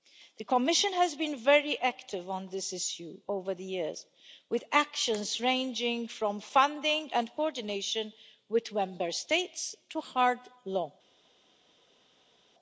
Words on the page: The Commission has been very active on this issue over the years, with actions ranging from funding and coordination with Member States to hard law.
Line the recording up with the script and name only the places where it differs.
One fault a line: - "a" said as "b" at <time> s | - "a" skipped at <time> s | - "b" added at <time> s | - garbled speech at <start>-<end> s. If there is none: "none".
none